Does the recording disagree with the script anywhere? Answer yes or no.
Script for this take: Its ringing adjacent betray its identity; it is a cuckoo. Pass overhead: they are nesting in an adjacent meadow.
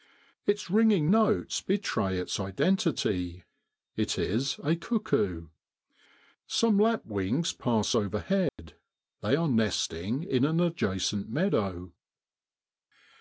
yes